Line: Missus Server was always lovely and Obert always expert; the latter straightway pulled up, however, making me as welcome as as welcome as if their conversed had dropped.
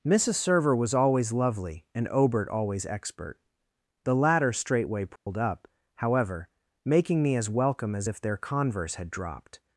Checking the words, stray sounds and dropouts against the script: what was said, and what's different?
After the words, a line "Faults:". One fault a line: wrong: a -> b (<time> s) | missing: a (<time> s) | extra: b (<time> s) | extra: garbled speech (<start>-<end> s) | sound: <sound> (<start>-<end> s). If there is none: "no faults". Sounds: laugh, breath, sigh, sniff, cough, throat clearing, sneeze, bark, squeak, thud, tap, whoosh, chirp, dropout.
Missus Server was always lovely and Obert always expert; the latter straightway pulled up, however, making me as welcome as if their converse had dropped.
Faults:
sound: dropout (5.2-5.3 s)
missing: as welcome as (8.1 s)
wrong: conversed -> converse (8.3 s)